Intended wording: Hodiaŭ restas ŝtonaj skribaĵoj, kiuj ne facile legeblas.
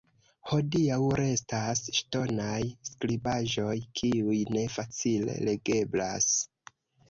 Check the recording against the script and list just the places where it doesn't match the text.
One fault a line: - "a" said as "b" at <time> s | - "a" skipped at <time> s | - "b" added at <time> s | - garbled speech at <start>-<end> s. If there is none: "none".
none